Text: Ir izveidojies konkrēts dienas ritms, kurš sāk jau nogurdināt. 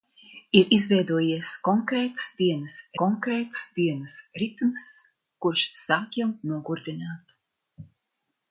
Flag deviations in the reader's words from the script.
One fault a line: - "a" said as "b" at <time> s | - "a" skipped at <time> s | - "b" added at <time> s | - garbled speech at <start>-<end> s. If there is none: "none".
- "konkrēts dienas" added at 3.0 s